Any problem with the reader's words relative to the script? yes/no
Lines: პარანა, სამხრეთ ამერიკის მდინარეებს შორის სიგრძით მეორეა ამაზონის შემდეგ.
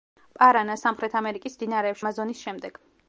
yes